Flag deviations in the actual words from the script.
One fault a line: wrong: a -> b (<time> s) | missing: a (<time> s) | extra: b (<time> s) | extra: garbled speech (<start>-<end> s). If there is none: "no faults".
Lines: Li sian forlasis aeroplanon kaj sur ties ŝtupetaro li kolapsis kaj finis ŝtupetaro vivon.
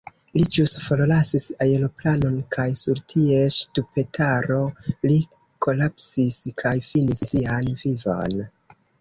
wrong: sian -> ĵus (0.6 s)
wrong: ŝtupetaro -> sian (7.3 s)